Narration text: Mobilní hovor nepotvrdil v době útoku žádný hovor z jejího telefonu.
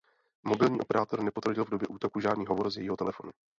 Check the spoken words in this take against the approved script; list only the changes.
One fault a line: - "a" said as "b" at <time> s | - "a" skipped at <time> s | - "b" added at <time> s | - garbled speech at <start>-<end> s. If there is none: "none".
- "hovor" said as "operátor" at 0.8 s